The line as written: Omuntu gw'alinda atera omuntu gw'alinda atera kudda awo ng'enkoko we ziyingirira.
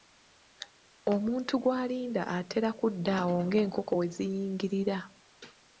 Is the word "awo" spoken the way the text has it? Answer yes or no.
yes